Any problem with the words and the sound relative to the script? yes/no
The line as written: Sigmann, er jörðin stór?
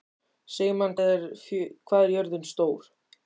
no